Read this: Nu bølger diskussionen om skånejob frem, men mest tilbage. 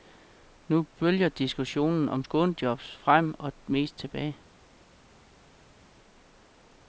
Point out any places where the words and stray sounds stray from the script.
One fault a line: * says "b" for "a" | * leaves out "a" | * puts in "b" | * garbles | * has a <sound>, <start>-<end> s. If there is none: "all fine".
* says "og" for "men"